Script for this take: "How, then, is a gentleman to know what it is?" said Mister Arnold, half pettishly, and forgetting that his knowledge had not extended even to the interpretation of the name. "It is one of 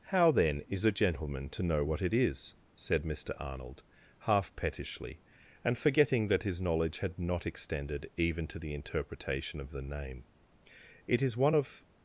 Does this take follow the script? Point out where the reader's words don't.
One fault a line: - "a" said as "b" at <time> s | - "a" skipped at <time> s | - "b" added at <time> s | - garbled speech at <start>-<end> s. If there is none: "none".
none